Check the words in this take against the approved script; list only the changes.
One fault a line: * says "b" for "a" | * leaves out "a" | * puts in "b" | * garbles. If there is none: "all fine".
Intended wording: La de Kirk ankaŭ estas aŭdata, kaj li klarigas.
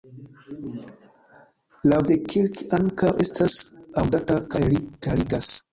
all fine